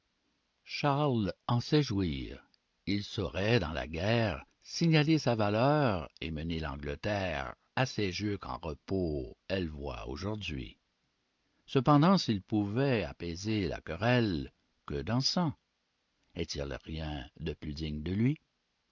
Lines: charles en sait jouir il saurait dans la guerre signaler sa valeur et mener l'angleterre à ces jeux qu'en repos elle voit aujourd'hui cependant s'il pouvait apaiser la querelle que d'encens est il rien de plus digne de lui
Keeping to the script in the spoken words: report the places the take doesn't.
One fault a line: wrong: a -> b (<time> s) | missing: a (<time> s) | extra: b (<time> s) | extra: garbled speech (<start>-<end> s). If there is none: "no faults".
no faults